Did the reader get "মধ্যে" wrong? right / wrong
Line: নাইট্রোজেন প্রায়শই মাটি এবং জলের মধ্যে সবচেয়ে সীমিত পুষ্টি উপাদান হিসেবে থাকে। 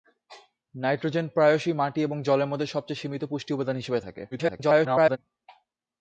right